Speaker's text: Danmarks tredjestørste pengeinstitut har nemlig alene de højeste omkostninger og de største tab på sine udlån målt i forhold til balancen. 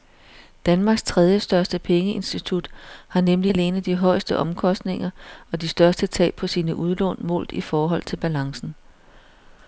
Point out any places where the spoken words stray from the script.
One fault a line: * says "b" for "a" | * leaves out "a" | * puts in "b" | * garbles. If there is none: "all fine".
all fine